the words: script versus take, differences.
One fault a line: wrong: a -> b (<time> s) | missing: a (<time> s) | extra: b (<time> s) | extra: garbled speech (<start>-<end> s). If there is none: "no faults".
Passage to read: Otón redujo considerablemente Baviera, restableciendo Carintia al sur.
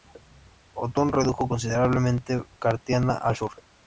missing: Baviera restableciendo (2.4 s)